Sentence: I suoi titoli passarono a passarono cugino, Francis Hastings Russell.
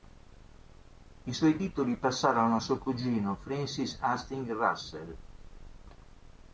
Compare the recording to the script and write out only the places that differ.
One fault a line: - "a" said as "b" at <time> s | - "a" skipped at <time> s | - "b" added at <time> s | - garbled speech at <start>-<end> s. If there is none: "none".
- "passarono" said as "suo" at 2.6 s